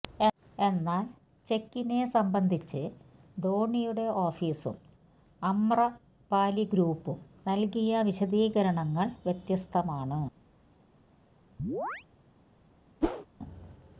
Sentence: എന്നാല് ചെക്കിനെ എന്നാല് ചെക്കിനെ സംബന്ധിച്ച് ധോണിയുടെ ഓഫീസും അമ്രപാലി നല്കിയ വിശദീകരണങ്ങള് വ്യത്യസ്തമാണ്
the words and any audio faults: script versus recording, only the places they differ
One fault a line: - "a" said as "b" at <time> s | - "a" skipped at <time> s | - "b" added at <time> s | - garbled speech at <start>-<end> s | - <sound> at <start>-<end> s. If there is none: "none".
- "എന്നാല് ചെക്കിനെ" skipped at 2.0 s
- "ഗ്രൂപ്പും" added at 6.6 s
- chirp at 11.6-12.1 s
- whoosh at 13.0-13.3 s